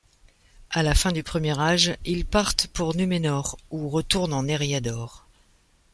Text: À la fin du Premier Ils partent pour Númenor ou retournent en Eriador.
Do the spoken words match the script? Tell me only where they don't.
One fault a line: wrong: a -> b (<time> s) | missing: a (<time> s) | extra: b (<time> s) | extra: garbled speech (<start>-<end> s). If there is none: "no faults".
extra: Âge (1.6 s)